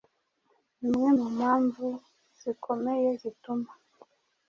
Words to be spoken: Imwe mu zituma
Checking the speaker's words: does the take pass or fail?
fail